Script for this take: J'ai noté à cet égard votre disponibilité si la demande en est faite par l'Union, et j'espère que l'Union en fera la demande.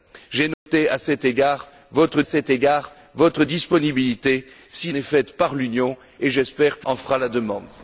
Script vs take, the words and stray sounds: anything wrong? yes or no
yes